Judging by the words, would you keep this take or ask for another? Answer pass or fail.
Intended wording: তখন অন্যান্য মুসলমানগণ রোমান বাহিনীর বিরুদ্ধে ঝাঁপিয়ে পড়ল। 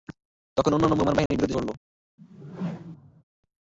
fail